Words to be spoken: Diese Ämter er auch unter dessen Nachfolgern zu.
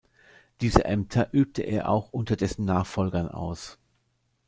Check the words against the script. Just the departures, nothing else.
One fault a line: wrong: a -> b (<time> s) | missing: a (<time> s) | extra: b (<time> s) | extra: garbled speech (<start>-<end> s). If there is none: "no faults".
extra: übte (1.3 s)
wrong: zu -> aus (3.3 s)